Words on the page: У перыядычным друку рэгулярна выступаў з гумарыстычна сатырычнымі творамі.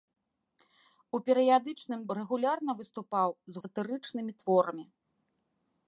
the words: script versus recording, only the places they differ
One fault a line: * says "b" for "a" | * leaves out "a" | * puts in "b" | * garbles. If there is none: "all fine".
* leaves out "друку"
* leaves out "гумарыстычна"